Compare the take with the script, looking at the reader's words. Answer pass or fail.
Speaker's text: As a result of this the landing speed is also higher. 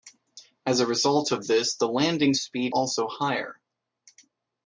fail